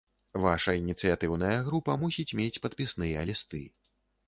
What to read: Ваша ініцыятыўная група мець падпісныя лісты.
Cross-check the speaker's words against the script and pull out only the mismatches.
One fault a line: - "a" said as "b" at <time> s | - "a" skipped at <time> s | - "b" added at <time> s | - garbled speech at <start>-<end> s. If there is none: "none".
- "мусіць" added at 2.1 s